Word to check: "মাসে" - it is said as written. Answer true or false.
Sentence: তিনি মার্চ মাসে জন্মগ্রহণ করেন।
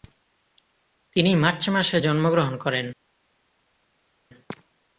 true